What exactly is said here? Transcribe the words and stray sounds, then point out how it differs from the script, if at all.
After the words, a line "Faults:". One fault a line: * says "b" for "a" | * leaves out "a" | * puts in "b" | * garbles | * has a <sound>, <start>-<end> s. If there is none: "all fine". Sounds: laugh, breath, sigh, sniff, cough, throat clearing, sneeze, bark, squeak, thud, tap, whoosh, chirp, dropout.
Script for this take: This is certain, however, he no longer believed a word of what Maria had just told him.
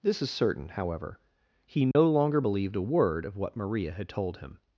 This is certain, however, he no longer believed a word of what Maria had told him.
Faults:
* has a dropout, 1.9-2.0 s
* leaves out "just"